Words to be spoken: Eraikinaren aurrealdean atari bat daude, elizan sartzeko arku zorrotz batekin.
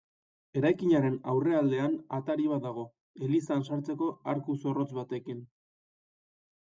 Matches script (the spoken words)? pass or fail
fail